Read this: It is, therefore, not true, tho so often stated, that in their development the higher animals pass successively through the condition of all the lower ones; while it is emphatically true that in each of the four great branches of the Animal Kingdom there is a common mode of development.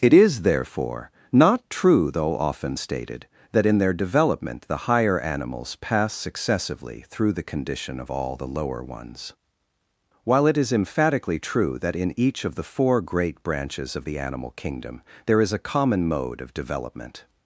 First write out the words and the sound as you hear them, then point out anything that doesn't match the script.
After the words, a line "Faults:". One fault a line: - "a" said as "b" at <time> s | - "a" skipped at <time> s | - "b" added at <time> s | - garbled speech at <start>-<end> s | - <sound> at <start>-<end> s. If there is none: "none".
It is, therefore, not true, though often stated, that in their development the higher animals pass successively through the condition of all the lower ones; while it is emphatically true that in each of the four great branches of the Animal Kingdom there is a common mode of development.
Faults:
- "tho so" said as "though" at 2.1 s